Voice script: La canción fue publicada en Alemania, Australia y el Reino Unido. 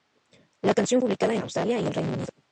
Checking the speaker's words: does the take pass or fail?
fail